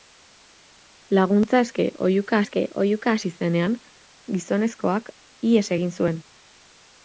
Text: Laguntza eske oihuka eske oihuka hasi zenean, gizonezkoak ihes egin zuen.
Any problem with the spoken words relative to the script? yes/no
no